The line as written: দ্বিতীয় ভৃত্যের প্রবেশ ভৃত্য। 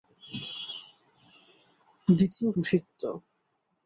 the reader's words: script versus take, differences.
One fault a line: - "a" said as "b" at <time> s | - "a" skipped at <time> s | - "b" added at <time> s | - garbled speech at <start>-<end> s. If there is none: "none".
- "ভৃত্যের প্রবেশ" skipped at 2.5 s